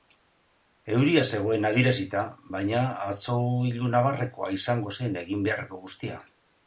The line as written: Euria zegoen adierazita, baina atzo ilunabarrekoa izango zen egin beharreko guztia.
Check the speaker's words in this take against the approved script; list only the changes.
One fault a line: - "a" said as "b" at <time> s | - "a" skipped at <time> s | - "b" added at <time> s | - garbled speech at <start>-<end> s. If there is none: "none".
none